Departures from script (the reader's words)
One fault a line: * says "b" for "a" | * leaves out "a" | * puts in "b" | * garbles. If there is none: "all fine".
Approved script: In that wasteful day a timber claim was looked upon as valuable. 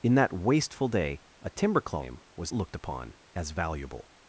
all fine